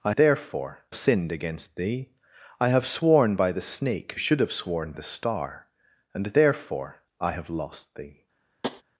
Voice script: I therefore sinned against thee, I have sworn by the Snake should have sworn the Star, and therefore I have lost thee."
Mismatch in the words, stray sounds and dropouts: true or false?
true